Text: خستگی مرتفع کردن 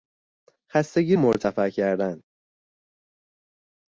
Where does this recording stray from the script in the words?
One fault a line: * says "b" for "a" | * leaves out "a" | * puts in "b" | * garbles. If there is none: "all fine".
all fine